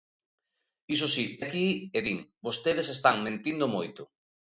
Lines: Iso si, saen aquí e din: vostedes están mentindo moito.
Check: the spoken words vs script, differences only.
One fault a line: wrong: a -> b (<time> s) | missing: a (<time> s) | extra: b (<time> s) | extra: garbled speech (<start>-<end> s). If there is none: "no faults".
missing: saen (1.2 s)